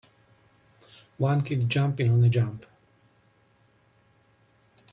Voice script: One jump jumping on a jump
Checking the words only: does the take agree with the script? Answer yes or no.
no